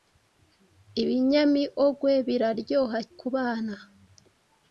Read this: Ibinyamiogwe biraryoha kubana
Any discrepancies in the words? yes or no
no